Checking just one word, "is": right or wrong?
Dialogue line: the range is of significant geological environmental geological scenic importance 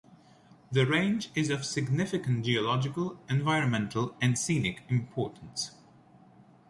right